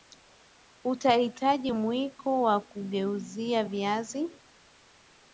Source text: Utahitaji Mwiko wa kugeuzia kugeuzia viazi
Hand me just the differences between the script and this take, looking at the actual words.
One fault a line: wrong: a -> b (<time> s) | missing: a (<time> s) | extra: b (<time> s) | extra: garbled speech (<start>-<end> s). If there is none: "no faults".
missing: kugeuzia (3.6 s)